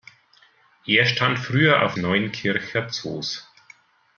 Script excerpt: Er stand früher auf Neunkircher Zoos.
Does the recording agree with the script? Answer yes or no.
yes